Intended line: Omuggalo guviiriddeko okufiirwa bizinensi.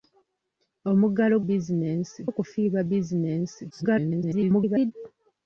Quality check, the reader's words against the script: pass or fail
fail